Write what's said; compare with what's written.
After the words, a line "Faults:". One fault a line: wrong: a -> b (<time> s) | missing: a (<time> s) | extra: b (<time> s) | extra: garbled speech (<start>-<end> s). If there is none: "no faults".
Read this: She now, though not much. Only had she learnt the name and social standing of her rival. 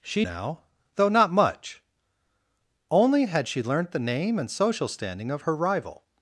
She now, though not much. Only had she learnt the name and social standing of her rival.
Faults:
no faults